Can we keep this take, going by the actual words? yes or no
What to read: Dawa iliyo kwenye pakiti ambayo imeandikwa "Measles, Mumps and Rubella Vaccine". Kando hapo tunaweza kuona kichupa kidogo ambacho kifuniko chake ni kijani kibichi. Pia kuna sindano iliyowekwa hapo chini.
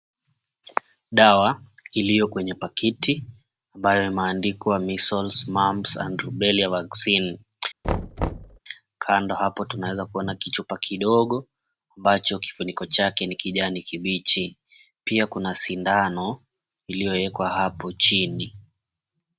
yes